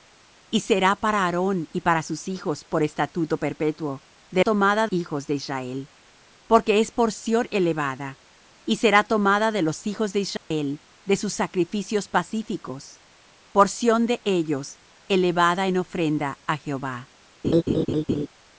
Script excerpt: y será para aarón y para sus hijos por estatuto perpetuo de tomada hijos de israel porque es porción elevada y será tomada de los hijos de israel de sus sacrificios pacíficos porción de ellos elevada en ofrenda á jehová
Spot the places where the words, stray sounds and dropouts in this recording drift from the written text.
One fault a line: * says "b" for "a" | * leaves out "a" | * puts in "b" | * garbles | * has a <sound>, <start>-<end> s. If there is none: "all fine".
* has a dropout, 10.4-10.5 s
* has a laugh, 17.4-18.3 s